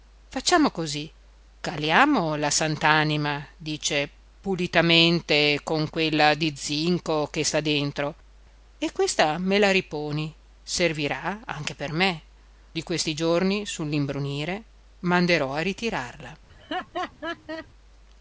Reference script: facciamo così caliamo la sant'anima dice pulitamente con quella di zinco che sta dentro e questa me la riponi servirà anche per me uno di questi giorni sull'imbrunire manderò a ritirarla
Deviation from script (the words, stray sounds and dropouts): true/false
true